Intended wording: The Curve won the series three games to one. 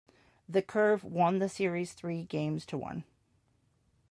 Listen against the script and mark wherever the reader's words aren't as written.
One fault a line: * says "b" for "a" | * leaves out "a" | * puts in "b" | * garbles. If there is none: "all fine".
all fine